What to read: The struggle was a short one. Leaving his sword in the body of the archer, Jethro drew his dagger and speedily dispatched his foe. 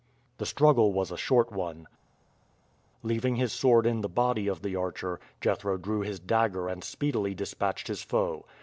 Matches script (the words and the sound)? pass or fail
pass